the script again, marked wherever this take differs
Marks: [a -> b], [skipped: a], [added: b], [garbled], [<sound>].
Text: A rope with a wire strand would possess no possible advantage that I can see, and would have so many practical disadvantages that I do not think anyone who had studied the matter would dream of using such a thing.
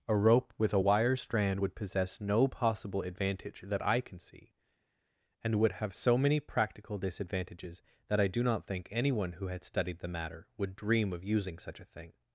A rope with a wire strand would possess no possible advantage that I can see, and would have so many practical disadvantages that I do not think anyone who had studied the matter would dream of using such a thing.